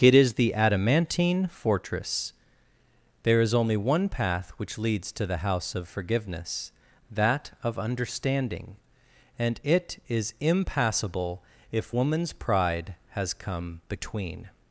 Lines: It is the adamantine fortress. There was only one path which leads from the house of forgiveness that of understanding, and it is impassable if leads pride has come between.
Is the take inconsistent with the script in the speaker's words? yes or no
yes